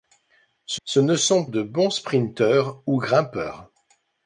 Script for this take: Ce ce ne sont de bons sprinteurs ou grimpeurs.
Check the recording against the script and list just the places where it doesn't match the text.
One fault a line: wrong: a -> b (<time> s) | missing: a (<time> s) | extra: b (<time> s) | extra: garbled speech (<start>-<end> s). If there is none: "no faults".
no faults